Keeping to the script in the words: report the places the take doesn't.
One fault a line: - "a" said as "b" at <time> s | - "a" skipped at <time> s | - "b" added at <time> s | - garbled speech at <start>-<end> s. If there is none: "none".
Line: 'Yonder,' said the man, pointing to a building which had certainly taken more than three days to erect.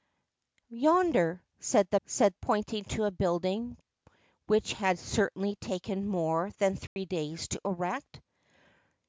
- "man" said as "said" at 2.1 s